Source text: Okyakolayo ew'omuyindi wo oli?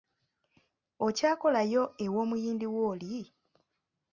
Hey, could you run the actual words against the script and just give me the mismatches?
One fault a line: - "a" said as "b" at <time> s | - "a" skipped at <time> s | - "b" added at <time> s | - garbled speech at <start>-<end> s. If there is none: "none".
none